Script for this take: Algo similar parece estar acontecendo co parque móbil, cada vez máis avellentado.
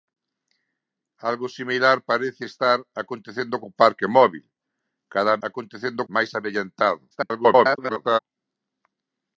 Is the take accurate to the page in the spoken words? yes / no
no